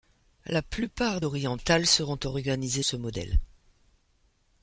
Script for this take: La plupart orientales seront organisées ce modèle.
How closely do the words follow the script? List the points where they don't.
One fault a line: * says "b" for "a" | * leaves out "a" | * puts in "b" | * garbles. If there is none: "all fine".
all fine